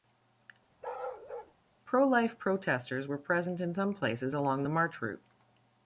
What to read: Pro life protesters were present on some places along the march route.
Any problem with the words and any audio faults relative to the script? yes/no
yes